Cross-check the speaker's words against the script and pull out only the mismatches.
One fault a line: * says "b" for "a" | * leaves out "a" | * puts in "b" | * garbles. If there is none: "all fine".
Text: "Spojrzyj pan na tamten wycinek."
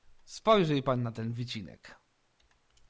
* says "ten" for "tamten"